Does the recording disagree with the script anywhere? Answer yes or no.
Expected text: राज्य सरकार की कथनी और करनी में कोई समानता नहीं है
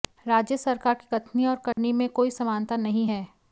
no